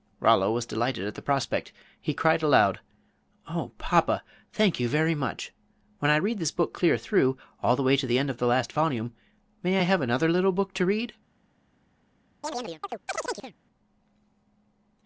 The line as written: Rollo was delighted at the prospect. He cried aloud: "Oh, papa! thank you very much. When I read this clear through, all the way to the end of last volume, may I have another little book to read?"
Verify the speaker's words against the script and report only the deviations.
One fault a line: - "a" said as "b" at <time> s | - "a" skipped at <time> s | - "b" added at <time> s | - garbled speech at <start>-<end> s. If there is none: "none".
- "book" added at 6.5 s
- "the" added at 8.4 s